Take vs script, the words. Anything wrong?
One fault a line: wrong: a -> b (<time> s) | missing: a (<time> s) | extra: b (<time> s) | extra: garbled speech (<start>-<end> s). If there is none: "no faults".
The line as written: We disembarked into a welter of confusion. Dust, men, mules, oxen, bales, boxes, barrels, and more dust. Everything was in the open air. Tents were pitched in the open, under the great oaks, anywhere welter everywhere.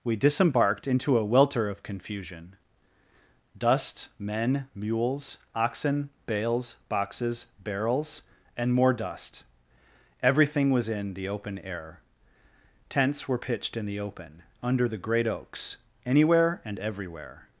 wrong: welter -> and (16.6 s)